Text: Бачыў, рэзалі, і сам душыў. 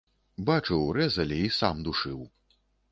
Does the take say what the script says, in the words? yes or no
yes